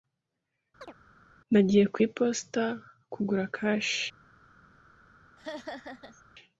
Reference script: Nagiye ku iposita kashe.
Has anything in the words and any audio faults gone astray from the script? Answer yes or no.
yes